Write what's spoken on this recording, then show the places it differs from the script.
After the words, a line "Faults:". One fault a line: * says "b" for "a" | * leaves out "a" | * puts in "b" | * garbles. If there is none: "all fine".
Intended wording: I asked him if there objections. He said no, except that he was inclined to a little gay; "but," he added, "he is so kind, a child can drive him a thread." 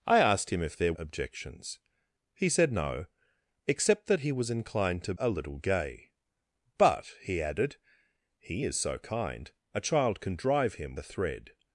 I asked him if there objections. He said no, except that he was inclined to a little gay; "but," he added, "he is so kind, a child can drive him a thread."
Faults:
all fine